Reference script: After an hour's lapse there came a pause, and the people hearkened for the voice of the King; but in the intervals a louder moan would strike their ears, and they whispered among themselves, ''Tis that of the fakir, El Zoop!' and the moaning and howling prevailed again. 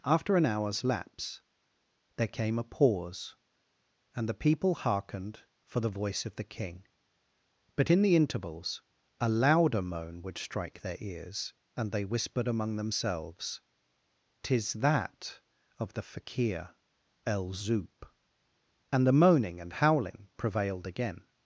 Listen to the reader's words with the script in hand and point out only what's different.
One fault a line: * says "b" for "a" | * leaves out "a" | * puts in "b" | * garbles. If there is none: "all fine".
all fine